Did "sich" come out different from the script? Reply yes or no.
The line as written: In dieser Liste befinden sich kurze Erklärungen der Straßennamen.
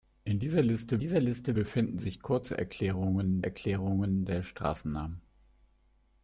no